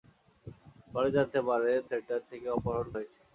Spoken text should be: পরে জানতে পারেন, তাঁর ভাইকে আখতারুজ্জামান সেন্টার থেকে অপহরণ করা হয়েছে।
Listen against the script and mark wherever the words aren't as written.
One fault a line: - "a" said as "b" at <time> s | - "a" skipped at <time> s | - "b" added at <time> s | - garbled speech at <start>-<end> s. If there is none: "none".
- "তাঁর ভাইকে আখতারুজ্জামান" skipped at 1.8 s
- "করা" skipped at 2.9 s